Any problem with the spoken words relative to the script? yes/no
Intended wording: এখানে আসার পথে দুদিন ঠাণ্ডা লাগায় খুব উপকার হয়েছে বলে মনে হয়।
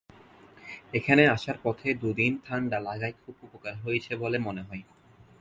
no